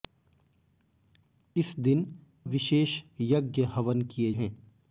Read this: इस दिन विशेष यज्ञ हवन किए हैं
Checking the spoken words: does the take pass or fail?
pass